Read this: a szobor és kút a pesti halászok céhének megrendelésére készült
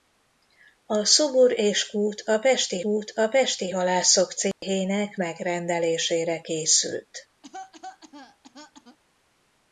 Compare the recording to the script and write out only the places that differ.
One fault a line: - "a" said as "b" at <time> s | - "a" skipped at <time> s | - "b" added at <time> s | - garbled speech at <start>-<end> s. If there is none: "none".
- "kút a pesti" added at 2.8 s